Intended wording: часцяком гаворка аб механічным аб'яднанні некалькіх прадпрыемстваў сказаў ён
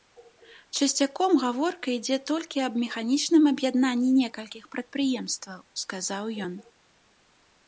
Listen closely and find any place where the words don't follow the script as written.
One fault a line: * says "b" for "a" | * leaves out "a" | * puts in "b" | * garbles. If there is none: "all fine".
* puts in "ідзе толькі"